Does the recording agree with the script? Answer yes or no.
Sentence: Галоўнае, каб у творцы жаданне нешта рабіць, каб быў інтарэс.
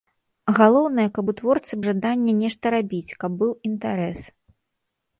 yes